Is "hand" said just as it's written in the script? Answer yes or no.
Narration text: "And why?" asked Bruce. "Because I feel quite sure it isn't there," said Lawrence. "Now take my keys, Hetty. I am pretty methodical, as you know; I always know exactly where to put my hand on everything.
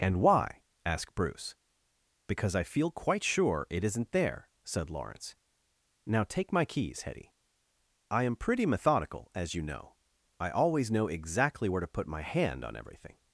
yes